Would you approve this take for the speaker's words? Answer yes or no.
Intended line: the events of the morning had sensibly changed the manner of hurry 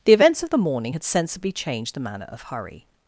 yes